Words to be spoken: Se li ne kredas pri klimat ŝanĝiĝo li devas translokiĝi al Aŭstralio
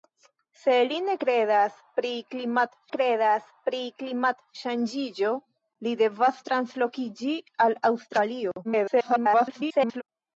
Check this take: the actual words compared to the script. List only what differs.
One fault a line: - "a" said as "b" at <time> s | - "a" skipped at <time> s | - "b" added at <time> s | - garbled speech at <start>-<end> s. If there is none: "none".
- "kredas pri klimat" added at 2.9 s
- garbled speech at 8.6-10.0 s